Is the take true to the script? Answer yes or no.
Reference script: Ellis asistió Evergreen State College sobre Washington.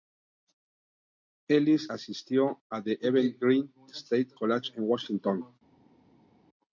no